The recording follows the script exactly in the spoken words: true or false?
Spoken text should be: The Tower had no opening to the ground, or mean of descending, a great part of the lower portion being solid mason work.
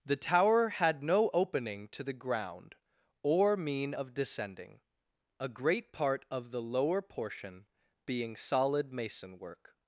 true